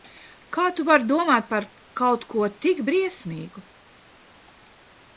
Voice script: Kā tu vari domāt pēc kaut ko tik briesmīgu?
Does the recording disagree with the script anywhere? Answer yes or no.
yes